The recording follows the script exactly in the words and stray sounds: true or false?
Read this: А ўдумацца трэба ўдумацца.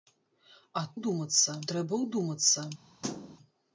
false